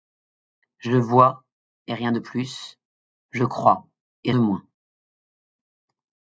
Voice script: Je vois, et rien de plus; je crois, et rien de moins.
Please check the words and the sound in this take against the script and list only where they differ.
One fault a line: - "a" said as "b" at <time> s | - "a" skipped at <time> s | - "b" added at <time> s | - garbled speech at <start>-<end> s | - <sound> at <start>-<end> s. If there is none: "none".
- "rien" skipped at 4.3 s